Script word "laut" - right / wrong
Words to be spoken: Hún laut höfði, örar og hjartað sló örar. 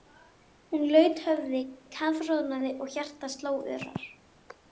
right